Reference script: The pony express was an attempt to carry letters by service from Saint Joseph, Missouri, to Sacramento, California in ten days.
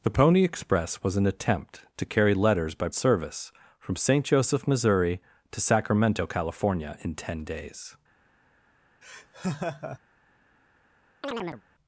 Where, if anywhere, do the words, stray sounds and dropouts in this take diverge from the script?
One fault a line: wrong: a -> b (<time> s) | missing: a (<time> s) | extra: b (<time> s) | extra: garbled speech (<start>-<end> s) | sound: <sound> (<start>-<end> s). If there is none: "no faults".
sound: laugh (9.0-10.0 s)
sound: chirp (11.2-11.6 s)